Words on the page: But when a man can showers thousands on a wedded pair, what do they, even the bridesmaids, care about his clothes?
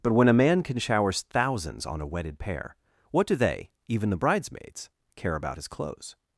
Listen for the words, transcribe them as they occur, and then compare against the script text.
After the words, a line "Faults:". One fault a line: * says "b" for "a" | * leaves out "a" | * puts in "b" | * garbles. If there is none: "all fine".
But when a man can showers thousands on a wedded pair, what do they, even the bridesmaids, care about his clothes?
Faults:
all fine